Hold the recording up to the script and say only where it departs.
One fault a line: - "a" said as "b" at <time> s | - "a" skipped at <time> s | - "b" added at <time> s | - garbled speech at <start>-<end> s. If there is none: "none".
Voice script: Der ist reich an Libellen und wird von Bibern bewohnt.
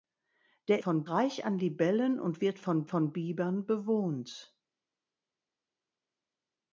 - "ist" said as "von" at 0.8 s
- "von" added at 2.8 s